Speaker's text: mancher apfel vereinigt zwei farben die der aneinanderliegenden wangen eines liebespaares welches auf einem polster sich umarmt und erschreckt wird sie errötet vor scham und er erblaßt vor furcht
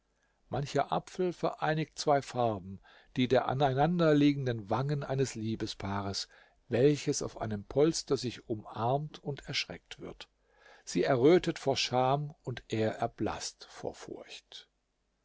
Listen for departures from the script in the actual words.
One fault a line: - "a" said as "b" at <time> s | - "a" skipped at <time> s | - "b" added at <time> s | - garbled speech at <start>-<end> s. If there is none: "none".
none